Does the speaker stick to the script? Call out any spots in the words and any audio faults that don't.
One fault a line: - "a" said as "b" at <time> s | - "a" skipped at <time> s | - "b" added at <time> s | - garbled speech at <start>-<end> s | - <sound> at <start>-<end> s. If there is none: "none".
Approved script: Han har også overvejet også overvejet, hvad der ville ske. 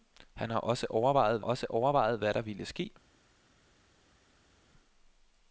none